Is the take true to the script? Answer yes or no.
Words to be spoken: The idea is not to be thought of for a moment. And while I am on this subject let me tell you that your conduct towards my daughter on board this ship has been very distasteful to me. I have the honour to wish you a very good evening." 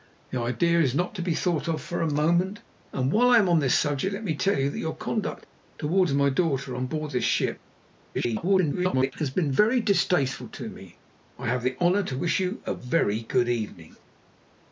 no